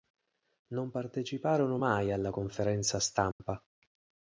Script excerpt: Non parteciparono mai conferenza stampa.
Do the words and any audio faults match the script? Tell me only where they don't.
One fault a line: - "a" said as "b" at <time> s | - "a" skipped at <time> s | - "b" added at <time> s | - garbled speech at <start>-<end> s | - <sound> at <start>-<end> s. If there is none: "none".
- "alla" added at 2.1 s
- dropout at 3.3-3.4 s